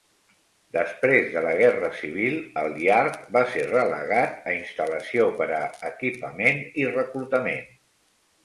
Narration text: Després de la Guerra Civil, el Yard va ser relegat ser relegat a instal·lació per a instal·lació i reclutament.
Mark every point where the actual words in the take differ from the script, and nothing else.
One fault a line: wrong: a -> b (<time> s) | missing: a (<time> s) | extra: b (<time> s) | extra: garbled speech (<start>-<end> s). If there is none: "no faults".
missing: ser relegat (4.5 s)
wrong: instal·lació -> equipament (5.9 s)